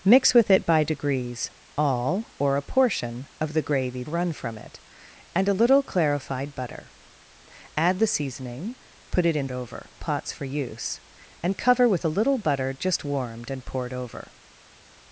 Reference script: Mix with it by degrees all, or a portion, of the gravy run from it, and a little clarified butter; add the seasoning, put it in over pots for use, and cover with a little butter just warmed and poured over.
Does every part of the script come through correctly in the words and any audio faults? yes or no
yes